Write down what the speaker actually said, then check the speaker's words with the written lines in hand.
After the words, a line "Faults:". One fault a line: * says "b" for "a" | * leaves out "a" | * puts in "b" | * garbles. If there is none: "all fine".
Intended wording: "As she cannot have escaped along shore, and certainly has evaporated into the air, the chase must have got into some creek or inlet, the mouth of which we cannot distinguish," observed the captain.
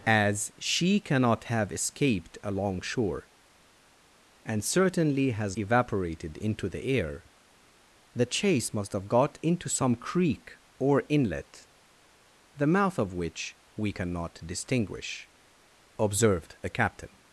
"As she cannot have escaped along shore, and certainly has evaporated into the air, the chase must have got into some creek or inlet, the mouth of which we cannot distinguish," observed the captain.
Faults:
all fine